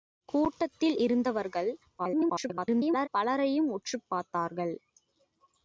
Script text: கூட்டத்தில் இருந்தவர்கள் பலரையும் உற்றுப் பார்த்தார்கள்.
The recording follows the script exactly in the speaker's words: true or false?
false